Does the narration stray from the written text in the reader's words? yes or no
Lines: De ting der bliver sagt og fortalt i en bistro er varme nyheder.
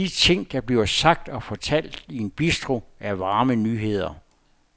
no